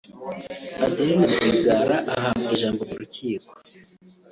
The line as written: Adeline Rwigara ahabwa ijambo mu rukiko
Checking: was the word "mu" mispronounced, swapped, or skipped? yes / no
no